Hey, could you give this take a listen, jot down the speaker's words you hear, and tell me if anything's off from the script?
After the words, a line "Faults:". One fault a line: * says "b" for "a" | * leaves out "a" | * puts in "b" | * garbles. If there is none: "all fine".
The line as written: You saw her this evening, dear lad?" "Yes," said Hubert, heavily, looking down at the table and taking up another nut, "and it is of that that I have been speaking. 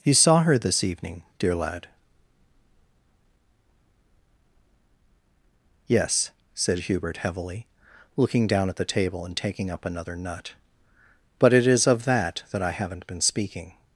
You saw her this evening, dear lad?" "Yes," said Hubert, heavily, looking down at the table and taking up another nut, "but it is of that that I haven't been speaking.
Faults:
* says "but" for "and"
* says "haven't" for "have"